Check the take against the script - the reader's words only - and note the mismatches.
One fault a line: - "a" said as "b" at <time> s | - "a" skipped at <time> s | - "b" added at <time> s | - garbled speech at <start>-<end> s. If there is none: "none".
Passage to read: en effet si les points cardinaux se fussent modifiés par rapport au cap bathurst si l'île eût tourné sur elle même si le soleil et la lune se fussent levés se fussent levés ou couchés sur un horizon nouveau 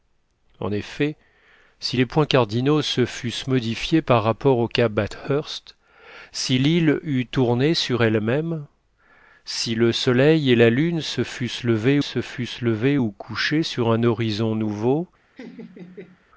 none